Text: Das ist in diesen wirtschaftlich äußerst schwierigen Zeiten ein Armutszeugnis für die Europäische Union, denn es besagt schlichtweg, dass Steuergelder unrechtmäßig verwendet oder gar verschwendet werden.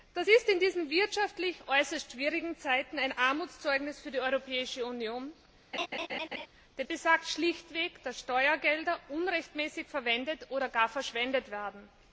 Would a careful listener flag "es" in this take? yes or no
yes